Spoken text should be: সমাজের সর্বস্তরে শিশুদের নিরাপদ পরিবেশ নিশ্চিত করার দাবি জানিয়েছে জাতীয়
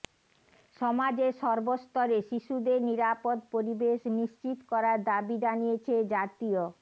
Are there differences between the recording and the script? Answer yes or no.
no